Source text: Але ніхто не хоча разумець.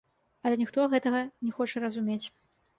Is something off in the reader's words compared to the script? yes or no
yes